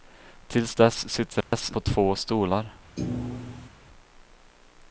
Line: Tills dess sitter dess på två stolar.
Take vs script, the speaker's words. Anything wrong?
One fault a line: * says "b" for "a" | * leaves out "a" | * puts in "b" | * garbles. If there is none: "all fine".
all fine